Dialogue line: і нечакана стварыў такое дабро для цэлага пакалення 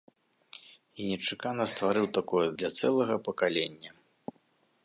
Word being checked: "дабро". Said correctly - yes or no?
no